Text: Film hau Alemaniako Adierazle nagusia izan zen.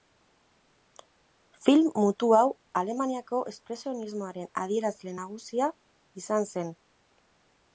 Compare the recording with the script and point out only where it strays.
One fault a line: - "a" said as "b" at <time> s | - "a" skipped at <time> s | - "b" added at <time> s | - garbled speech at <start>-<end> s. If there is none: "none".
- "mutu" added at 2.0 s
- "Espresionismoaren" added at 3.5 s